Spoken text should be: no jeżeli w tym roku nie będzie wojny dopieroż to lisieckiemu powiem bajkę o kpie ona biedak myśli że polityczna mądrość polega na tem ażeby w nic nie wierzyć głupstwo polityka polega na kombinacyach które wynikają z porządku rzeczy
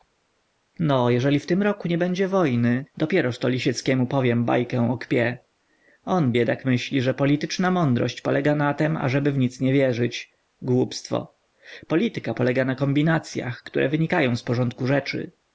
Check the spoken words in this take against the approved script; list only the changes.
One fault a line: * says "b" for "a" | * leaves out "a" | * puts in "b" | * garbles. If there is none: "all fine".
* says "on" for "ona"